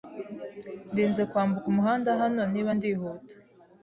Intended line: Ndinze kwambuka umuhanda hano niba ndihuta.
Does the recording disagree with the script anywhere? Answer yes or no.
no